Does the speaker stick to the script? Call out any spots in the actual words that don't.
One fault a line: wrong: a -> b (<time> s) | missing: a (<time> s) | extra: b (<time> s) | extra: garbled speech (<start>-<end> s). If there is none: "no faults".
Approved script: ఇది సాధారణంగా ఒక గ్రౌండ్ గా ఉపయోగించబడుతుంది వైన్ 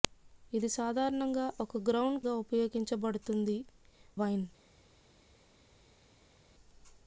no faults